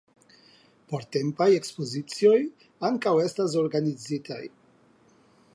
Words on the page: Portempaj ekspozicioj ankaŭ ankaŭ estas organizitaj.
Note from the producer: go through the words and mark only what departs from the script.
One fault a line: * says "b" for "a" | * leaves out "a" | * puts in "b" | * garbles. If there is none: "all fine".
* leaves out "ankaŭ"